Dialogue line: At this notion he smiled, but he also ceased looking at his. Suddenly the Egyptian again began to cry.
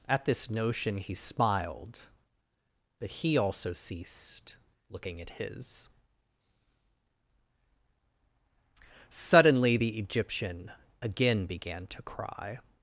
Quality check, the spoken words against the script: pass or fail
pass